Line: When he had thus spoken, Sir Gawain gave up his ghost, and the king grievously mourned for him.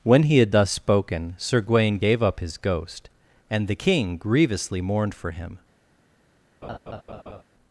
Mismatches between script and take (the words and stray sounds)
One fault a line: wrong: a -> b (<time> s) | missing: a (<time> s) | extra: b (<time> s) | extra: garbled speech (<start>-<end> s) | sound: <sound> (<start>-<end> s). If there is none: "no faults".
sound: laugh (6.6-7.4 s)